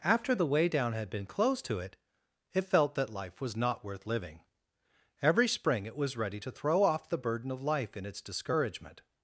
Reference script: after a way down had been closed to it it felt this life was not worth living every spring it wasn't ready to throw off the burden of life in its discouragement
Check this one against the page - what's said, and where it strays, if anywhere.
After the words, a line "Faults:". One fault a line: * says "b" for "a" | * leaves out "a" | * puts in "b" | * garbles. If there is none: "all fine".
after the way down had been closed to it it felt that life was not worth living every spring it was ready to throw off the burden of life in its discouragement
Faults:
* says "the" for "a"
* says "that" for "this"
* says "was" for "wasn't"